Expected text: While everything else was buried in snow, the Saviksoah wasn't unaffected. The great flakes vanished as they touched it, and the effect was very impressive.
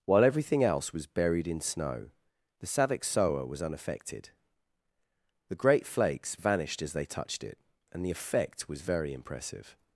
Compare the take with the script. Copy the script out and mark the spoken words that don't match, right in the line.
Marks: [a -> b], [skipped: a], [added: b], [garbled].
While everything else was buried in snow, the Saviksoah [wasn't -> was] unaffected. The great flakes vanished as they touched it, and the effect was very impressive.